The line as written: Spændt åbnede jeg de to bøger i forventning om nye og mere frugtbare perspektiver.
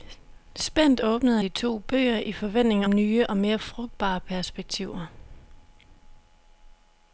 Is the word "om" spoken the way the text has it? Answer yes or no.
no